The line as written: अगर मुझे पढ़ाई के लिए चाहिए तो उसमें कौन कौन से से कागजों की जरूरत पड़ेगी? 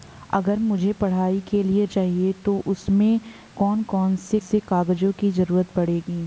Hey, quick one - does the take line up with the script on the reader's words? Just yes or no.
yes